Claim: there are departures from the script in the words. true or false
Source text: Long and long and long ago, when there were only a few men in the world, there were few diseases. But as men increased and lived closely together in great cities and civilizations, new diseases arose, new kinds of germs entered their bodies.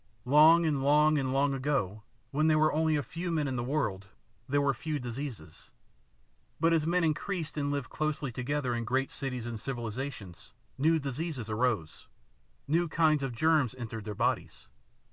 false